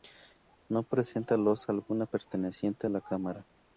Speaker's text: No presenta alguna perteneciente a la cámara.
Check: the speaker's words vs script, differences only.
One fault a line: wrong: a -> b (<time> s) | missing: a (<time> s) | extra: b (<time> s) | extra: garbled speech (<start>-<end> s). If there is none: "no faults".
extra: losa (1.4 s)